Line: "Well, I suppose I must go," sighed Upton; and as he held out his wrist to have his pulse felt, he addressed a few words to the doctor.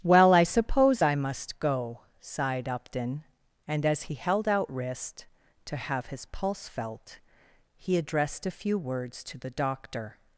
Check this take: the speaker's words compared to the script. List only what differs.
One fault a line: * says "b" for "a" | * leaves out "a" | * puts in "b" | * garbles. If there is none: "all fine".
* leaves out "his"